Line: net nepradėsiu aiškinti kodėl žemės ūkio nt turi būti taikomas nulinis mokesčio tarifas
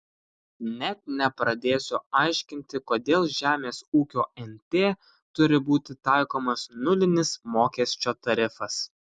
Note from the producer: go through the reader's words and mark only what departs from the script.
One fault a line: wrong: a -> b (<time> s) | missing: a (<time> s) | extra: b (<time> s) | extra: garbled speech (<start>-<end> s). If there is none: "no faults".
no faults